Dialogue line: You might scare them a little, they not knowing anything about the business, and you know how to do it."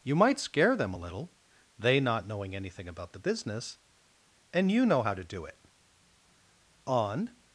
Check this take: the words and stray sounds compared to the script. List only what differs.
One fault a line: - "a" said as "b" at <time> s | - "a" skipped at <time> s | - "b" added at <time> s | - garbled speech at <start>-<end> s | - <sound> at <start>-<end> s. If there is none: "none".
- "On" added at 6.9 s